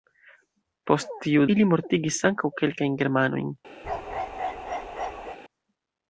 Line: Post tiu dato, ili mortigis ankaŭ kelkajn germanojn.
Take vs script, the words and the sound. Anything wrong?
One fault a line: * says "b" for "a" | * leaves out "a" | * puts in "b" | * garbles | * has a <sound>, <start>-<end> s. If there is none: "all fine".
* leaves out "dato"
* has a bark, 3.8-5.4 s